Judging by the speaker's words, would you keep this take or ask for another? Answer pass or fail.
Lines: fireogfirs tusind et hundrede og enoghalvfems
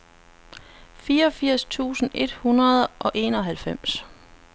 pass